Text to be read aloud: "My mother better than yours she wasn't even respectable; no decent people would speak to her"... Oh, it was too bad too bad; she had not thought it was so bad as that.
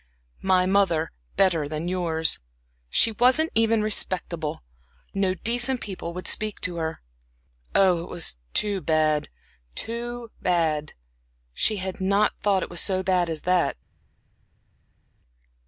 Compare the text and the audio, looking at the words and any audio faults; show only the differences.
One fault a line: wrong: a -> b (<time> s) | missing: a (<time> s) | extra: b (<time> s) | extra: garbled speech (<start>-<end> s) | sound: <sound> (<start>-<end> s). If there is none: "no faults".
no faults